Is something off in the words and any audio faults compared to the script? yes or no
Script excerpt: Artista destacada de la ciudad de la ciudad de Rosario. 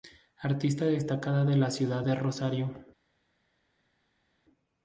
yes